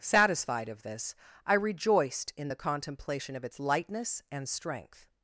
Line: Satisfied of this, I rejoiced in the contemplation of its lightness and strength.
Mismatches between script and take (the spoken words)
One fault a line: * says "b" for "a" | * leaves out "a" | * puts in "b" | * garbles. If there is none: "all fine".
all fine